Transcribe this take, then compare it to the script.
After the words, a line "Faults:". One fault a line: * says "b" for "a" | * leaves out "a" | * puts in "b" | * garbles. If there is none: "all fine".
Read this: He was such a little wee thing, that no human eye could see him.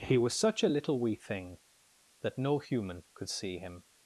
He was such a little wee thing, that no human could see him.
Faults:
* leaves out "eye"